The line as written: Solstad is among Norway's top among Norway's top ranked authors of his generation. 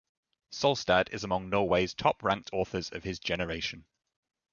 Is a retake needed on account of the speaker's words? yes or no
yes